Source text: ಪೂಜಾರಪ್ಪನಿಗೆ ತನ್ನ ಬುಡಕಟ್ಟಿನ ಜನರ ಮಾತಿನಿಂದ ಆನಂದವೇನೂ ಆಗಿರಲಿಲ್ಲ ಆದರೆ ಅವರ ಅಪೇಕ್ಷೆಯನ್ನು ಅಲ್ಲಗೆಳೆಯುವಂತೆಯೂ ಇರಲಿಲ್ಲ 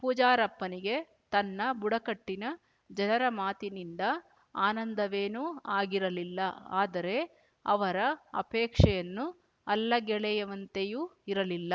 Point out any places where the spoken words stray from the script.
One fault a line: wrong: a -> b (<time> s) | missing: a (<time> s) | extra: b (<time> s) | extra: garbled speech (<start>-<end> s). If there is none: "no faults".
no faults